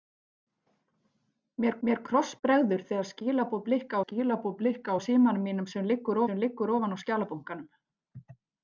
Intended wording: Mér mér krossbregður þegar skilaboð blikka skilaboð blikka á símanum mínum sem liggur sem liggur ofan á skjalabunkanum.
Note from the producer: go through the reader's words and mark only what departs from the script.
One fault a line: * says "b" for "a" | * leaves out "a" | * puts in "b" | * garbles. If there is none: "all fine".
all fine